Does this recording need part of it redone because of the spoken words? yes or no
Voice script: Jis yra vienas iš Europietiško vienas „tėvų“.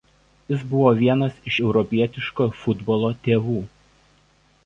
yes